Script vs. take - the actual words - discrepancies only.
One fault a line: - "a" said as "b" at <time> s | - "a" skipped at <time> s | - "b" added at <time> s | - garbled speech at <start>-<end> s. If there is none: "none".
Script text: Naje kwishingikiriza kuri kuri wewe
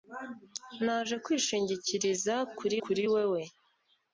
none